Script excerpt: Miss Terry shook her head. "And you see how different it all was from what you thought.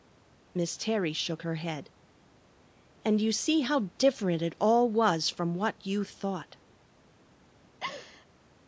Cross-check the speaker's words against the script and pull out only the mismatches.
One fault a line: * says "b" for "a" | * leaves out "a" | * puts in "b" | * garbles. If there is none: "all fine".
all fine